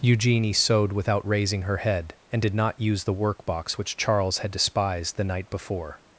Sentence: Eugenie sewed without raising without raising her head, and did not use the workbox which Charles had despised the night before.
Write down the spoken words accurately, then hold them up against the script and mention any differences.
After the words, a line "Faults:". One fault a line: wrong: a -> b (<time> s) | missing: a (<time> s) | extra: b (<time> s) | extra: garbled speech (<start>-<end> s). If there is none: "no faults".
Eugenie sewed without raising her head, and did not use the workbox which Charles had despised the night before.
Faults:
missing: without raising (1.6 s)